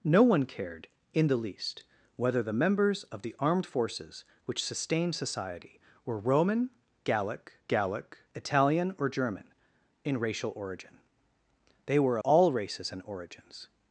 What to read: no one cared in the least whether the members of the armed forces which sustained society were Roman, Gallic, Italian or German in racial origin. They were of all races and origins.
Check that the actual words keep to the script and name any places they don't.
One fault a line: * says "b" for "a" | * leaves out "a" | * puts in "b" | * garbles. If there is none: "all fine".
* puts in "Gallic"
* leaves out "of"